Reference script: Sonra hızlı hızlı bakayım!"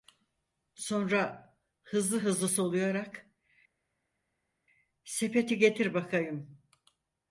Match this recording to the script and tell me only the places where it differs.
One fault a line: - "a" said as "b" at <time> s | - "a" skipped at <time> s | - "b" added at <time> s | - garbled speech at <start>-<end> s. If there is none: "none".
- "soluyarak Sepeti getir" added at 2.5 s